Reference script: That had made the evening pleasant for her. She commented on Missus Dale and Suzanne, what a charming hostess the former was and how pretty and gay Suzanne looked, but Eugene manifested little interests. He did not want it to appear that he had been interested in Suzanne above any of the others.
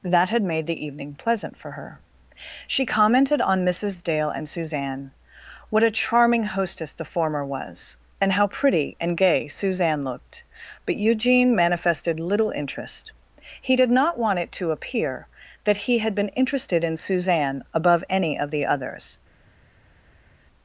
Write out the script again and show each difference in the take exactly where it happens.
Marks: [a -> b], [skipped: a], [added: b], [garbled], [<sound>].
That had made the evening pleasant for her. She commented on Missus Dale and Suzanne, what a charming hostess the former was and how pretty and gay Suzanne looked, but Eugene manifested little [interests. -> interest] He did not want it to appear that he had been interested in Suzanne above any of the others.